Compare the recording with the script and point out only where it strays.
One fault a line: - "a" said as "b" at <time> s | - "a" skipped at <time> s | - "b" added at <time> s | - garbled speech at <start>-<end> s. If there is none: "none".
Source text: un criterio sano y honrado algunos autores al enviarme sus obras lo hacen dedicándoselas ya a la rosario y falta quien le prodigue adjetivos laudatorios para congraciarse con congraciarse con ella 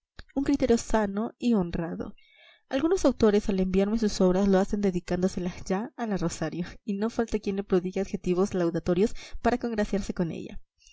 - "no" added at 6.9 s
- "congraciarse con" skipped at 10.3 s